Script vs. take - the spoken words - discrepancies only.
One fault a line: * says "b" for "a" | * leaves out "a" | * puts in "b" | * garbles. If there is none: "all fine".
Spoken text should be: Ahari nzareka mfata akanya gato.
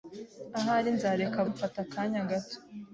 all fine